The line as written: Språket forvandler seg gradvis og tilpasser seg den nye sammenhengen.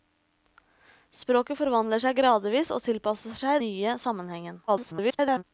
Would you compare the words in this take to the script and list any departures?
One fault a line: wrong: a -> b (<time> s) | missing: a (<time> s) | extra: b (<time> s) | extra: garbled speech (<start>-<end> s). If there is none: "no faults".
missing: den (3.6 s)
extra: garbled speech (4.7-5.4 s)